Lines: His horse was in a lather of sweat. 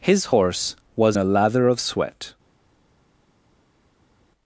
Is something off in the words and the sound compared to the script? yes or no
yes